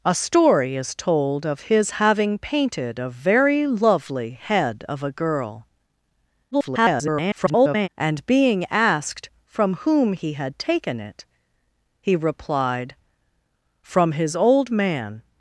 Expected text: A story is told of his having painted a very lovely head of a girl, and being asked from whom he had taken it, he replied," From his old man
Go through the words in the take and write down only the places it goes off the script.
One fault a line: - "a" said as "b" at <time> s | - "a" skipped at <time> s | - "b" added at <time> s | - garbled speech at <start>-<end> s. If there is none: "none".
- garbled speech at 6.5-7.9 s